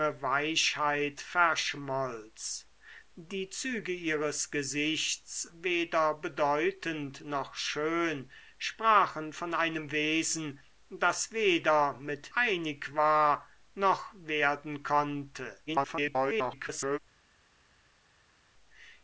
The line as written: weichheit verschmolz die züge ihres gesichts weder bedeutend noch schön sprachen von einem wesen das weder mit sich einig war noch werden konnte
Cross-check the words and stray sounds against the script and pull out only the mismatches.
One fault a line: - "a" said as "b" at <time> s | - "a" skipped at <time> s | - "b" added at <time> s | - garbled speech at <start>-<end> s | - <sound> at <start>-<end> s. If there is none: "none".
- "sich" skipped at 12.3 s
- garbled speech at 15.7-17.0 s